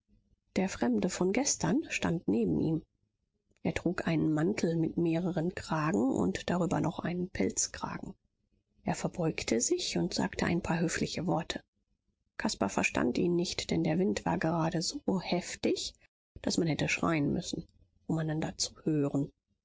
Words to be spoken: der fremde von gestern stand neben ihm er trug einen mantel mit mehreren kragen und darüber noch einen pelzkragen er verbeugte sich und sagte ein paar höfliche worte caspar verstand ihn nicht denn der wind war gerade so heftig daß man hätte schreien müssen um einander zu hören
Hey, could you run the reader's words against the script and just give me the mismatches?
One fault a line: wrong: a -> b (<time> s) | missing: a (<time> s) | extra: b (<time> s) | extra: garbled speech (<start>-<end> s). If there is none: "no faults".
no faults